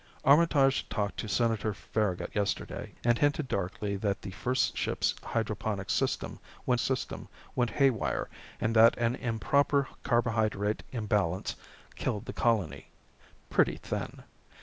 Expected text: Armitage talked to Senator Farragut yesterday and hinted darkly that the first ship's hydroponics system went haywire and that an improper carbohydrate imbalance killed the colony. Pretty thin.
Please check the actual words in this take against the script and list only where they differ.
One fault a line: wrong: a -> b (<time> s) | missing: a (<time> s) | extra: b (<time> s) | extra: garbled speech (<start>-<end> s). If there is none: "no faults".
extra: system went (6.8 s)